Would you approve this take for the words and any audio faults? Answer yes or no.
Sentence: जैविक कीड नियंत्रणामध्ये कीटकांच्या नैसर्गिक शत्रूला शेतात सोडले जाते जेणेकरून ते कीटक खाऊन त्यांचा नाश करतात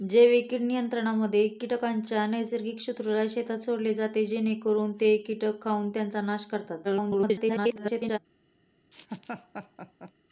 no